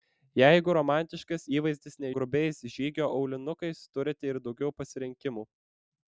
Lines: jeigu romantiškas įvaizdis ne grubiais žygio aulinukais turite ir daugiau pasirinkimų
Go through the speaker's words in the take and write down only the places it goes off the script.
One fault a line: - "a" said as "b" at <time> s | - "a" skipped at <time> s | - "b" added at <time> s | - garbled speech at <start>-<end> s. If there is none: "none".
none